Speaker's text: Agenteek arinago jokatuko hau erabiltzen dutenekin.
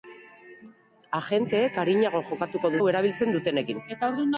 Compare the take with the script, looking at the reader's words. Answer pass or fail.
pass